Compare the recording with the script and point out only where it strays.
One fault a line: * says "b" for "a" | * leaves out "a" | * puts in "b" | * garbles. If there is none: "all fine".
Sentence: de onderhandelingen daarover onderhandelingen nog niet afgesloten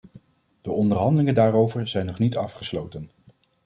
* says "zijn" for "onderhandelingen"